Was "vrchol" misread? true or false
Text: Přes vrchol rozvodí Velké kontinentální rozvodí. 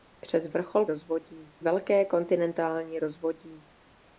false